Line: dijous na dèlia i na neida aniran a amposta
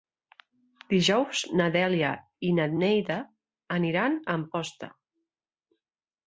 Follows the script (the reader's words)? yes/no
yes